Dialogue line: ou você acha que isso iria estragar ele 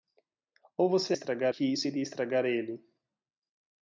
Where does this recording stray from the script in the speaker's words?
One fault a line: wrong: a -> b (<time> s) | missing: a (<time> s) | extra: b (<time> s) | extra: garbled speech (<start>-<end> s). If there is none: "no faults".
wrong: acha -> estragar (1.1 s)